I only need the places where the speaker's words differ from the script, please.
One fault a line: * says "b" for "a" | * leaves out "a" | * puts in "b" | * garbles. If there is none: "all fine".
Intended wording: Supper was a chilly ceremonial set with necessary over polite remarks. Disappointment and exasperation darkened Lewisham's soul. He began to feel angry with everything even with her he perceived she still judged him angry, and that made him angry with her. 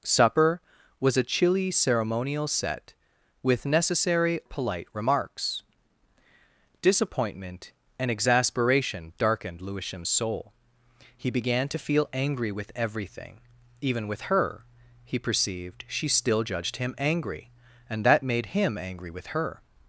* leaves out "over"